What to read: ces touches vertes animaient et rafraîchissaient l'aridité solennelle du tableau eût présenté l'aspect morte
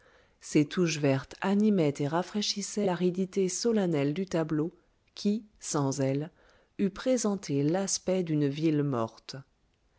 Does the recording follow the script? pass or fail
fail